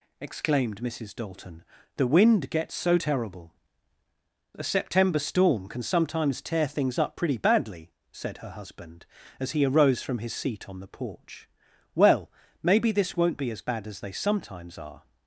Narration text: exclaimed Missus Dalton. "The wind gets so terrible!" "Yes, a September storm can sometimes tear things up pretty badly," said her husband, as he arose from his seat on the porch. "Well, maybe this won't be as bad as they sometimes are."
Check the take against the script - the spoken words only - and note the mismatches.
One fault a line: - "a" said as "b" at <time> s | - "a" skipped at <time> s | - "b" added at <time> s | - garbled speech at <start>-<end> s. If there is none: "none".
- "Yes" skipped at 3.5 s